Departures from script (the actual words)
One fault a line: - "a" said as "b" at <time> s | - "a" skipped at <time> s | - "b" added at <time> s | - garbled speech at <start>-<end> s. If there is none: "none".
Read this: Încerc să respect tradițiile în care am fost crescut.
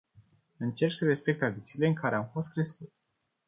none